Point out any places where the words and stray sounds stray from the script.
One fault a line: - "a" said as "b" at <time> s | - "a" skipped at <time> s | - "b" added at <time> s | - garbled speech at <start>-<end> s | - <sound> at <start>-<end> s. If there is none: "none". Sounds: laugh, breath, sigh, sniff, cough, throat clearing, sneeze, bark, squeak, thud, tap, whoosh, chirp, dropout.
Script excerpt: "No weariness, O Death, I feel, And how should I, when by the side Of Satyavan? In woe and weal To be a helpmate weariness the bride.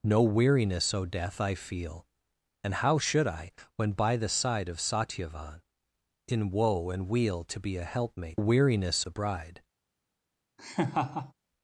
- laugh at 10.6-11.3 s